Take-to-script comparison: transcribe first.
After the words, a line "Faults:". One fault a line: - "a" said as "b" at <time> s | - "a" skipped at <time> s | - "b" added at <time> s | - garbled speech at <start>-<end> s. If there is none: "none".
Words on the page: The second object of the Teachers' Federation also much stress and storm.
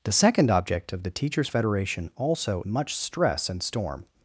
The second object of the Teachers' Federation also much stress and storm.
Faults:
none